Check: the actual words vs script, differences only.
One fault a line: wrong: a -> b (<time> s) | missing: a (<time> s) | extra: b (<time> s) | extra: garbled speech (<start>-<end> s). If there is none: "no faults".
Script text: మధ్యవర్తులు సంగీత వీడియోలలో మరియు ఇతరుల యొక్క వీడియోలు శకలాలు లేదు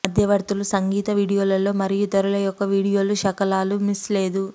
extra: మిస్ (3.8 s)